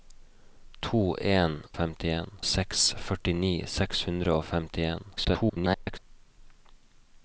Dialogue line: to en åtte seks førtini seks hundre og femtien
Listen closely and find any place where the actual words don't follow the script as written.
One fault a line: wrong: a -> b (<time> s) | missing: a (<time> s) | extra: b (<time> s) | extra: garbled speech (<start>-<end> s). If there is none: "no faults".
wrong: åtte -> femtien (1.8 s)
extra: garbled speech (5.2-6.0 s)